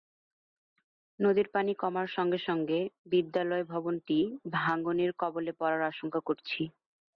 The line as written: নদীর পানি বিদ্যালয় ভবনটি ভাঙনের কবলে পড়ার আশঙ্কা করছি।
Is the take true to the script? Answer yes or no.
no